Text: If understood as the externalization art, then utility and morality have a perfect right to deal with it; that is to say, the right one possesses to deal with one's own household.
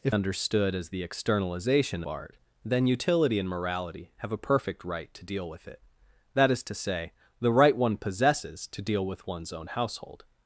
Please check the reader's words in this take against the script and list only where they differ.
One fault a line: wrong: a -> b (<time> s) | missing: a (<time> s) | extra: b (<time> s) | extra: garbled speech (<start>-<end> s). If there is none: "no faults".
no faults